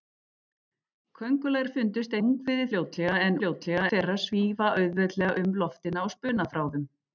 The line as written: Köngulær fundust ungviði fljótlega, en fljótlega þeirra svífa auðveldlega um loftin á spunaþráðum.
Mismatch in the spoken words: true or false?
false